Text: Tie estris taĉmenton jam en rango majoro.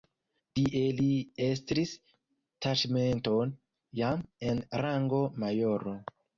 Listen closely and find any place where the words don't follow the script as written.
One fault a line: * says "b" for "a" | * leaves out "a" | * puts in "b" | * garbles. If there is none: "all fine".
* puts in "li"